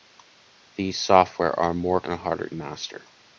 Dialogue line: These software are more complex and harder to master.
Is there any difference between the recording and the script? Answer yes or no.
yes